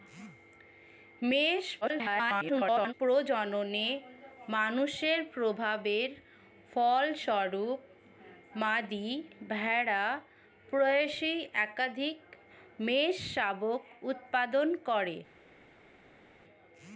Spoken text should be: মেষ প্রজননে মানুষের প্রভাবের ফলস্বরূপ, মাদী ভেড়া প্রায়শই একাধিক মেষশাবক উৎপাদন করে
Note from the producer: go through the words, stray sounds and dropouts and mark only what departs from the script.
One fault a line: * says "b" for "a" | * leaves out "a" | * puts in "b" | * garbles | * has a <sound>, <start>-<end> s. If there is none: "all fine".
* garbles